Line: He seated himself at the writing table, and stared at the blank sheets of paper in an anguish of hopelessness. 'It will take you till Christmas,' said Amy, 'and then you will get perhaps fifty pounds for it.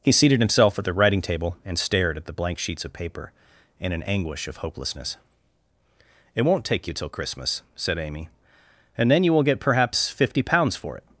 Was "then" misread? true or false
false